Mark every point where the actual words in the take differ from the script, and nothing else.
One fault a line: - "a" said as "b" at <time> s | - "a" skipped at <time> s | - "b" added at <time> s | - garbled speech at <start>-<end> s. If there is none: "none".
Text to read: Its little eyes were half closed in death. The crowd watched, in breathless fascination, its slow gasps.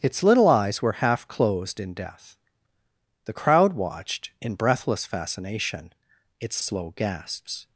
none